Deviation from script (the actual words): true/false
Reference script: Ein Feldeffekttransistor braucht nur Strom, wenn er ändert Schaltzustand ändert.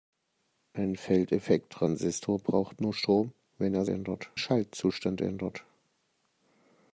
false